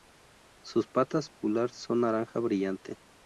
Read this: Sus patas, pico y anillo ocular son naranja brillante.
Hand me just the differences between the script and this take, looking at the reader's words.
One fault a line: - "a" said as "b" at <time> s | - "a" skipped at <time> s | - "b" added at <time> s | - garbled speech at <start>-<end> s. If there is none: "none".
- "pico y anillo" skipped at 1.3 s